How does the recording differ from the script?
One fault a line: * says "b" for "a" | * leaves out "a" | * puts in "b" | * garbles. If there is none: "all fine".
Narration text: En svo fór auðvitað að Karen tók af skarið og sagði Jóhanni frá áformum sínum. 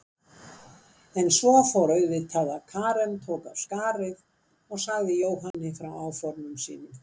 all fine